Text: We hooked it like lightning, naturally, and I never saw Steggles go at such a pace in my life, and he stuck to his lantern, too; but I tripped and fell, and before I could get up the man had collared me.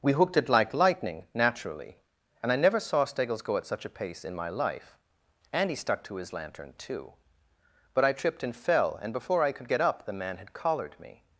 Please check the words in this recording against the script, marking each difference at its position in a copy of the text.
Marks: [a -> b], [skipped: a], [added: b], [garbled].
We hooked it like lightning, naturally, and I never saw Steggles go at such a pace in my life, and he stuck to his lantern, too; but I tripped and fell, and before I could get up the man had collared me.